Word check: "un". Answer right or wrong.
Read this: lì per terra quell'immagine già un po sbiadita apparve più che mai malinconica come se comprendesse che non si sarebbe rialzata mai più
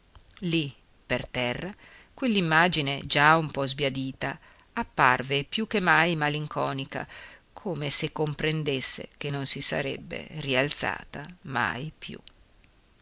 right